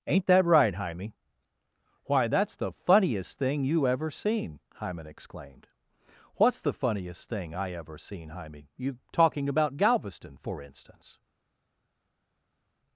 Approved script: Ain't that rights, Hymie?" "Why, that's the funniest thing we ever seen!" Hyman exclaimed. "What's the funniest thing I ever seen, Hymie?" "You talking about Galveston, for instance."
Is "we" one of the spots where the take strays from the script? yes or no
yes